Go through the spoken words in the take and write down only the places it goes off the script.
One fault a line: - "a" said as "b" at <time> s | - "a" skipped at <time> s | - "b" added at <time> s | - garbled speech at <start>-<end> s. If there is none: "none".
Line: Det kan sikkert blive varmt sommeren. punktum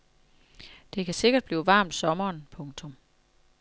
none